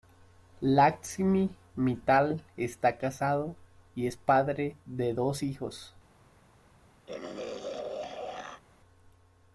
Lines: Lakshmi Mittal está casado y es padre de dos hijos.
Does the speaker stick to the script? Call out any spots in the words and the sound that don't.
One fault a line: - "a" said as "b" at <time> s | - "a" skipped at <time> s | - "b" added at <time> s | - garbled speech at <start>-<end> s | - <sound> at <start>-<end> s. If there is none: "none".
- throat clearing at 7.1-8.6 s